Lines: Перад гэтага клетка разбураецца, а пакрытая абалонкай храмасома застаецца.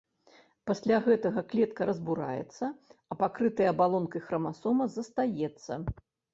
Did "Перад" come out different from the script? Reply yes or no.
yes